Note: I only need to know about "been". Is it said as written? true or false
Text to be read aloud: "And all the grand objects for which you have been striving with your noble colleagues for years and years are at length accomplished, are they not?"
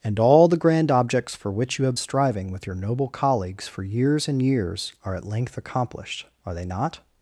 false